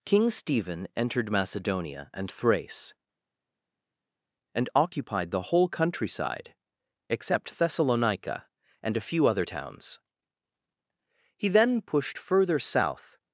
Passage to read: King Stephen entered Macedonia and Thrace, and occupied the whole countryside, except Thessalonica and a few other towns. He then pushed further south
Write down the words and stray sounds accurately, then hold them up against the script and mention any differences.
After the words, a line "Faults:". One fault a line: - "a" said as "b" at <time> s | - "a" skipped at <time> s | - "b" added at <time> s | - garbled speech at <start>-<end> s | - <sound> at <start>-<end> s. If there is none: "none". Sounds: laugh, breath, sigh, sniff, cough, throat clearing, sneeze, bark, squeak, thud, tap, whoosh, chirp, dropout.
King Stephen entered Macedonia and Thrace, and occupied the whole countryside, except Thessalonica and a few other towns. He then pushed further south
Faults:
none